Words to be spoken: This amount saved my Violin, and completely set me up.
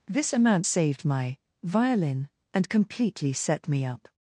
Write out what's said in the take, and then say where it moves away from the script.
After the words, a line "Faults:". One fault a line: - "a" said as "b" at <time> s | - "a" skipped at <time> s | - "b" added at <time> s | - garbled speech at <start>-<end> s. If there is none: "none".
This amount saved my Violin, and completely set me up.
Faults:
none